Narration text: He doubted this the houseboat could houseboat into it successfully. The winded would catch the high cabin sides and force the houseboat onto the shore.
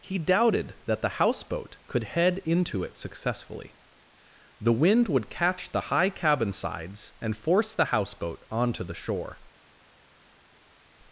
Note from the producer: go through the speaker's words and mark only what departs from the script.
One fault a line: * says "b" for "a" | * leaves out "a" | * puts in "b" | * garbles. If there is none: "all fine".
* says "that" for "this"
* says "head" for "houseboat"
* says "wind" for "winded"